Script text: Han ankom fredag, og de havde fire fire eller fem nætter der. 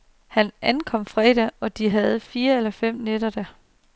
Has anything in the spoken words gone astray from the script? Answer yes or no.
yes